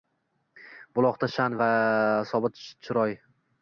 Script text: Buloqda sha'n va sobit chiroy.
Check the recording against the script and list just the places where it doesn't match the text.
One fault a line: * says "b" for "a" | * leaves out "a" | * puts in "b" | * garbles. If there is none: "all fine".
all fine